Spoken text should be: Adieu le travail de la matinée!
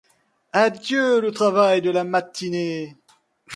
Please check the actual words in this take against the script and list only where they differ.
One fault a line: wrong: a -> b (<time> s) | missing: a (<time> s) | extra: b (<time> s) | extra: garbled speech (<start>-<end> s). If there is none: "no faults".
no faults